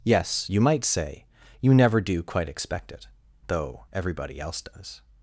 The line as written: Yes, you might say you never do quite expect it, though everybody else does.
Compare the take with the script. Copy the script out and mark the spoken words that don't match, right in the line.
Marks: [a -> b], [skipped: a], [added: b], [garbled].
Yes, you might say you never do quite expect it, though everybody else does.